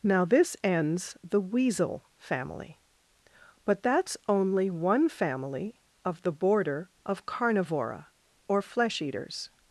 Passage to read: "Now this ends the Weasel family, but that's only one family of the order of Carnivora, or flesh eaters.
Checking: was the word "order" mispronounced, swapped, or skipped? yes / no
yes